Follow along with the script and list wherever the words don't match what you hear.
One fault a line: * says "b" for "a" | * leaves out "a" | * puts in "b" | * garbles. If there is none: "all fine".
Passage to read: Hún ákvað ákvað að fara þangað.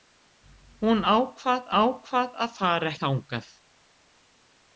all fine